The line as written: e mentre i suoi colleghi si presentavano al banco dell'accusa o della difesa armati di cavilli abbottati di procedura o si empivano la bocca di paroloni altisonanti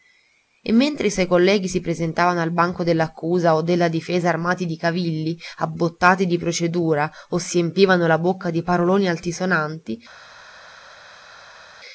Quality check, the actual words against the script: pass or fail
pass